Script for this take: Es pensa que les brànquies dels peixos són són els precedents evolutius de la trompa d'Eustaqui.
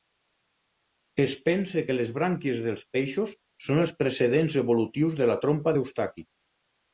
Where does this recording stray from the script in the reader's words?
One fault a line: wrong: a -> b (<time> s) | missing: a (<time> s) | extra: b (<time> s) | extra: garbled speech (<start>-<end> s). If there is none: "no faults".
missing: són (3.8 s)